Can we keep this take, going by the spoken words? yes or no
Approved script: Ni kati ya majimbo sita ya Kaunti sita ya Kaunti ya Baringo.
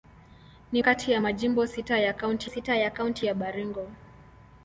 yes